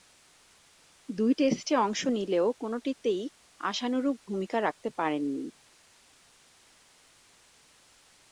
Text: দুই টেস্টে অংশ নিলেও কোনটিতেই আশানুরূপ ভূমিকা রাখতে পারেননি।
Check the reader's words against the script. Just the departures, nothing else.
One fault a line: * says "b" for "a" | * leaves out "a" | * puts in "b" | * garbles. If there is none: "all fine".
all fine